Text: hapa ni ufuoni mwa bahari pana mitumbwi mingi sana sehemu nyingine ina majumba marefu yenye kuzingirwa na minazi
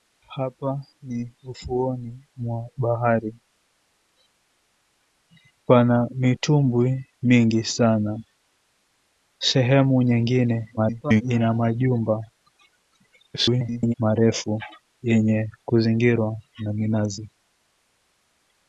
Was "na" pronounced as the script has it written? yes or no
yes